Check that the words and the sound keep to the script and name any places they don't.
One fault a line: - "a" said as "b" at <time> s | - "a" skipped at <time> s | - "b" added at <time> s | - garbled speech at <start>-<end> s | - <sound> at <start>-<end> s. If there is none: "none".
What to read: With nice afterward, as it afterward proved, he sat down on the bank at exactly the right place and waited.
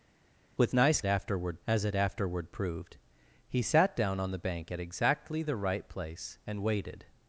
none